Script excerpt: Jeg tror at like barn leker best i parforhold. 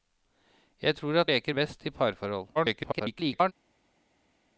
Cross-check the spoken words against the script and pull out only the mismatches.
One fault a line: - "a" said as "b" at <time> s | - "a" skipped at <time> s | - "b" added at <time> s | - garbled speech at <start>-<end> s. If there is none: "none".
- "like barn" skipped at 1.3 s
- garbled speech at 2.6-3.5 s